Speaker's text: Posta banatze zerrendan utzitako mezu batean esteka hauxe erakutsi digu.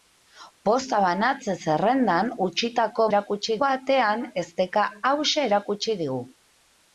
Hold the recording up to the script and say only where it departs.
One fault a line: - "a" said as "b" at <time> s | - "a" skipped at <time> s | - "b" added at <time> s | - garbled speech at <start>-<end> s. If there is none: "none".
- "mezu" said as "erakutsi" at 3.1 s